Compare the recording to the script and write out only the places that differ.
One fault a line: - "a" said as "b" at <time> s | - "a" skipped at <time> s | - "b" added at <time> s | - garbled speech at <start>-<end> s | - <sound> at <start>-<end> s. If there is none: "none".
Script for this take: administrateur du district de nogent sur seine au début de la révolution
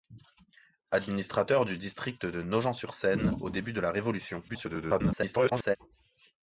- garbled speech at 4.5-5.8 s